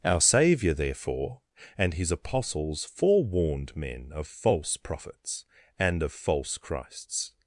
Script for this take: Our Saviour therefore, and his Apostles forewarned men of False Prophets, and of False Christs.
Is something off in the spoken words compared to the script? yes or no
no